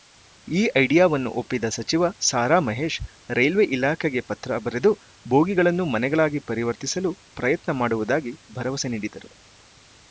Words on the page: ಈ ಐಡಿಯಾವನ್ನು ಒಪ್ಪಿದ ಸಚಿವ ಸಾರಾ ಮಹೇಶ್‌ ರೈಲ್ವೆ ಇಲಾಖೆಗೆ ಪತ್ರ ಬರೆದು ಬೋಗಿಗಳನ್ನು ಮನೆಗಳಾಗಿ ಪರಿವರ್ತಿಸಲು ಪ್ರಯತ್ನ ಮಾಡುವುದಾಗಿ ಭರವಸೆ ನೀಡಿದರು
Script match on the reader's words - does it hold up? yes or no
yes